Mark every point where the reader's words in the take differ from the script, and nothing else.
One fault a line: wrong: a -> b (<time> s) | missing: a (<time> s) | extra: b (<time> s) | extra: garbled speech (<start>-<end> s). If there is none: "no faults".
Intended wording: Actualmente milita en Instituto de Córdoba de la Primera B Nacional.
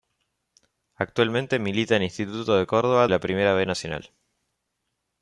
missing: de (3.1 s)